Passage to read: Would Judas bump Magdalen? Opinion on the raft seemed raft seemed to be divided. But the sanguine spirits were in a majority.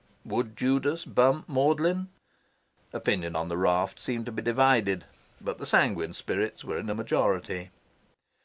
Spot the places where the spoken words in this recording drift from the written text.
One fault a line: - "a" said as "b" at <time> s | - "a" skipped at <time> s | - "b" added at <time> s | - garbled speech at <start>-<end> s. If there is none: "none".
- "raft seemed" skipped at 4.3 s